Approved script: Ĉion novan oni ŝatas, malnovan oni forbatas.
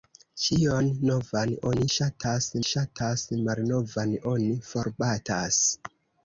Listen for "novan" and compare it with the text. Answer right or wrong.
right